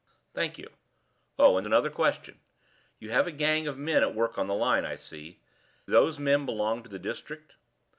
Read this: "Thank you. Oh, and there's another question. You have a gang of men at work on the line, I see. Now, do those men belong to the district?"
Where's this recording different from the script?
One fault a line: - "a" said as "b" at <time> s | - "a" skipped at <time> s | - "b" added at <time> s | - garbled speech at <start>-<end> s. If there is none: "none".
- "there's" skipped at 1.7 s
- "Now do" skipped at 5.4 s